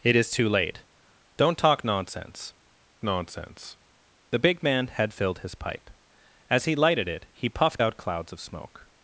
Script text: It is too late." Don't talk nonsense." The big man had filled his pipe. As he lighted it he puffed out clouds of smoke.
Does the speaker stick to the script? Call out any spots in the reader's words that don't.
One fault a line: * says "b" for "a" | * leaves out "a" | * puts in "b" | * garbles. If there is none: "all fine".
* puts in "nonsense"